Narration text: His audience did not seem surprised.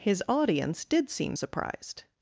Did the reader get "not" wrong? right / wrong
wrong